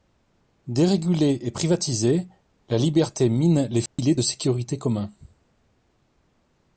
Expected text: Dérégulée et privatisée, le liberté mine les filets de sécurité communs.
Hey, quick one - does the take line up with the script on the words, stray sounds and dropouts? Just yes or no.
no